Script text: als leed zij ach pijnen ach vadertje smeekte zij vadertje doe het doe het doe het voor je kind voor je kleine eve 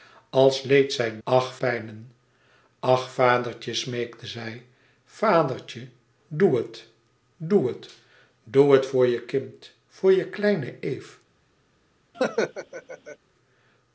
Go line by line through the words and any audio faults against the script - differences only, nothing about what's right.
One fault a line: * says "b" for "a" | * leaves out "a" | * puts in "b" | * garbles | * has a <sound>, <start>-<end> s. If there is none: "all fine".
* has a laugh, 12.1-13.2 s